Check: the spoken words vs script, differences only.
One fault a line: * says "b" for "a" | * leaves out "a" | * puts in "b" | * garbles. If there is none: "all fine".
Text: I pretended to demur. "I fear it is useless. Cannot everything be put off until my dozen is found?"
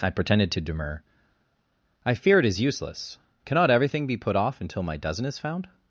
all fine